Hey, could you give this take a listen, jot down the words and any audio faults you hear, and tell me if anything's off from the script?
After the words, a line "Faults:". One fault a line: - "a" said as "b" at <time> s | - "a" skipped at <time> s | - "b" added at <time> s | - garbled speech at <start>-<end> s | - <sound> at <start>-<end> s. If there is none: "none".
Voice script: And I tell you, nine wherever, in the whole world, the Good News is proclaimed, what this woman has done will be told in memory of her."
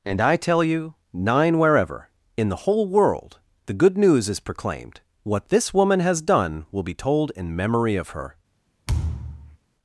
And I tell you, nine wherever, in the whole world, the Good News is proclaimed, what this woman has done will be told in memory of her."
Faults:
- thud at 8.9-9.6 s